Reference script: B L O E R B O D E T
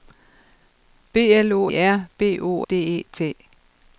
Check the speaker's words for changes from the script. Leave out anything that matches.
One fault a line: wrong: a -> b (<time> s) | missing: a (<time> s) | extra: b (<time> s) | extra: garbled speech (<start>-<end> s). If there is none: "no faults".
no faults